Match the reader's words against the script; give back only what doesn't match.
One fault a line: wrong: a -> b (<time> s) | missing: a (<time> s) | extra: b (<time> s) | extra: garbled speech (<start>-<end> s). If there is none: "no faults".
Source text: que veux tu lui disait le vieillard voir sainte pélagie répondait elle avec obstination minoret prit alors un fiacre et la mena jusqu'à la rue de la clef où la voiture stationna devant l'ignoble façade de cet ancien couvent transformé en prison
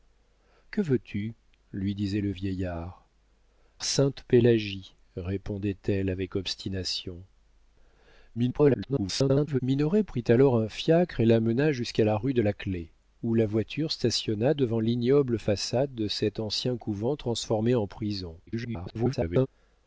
missing: voir (3.1 s)
extra: garbled speech (8.3-9.6 s)
extra: garbled speech (18.5-19.5 s)